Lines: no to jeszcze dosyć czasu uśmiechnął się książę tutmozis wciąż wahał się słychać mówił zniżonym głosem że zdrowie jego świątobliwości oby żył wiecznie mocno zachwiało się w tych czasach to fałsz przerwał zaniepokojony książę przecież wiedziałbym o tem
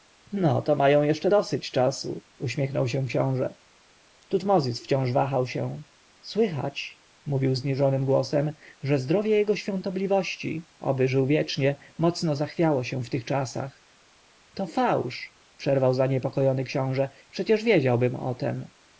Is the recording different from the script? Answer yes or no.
yes